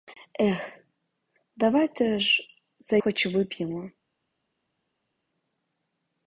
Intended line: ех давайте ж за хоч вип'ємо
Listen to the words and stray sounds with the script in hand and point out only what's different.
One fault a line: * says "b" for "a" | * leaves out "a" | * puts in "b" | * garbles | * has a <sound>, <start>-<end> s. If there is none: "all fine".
all fine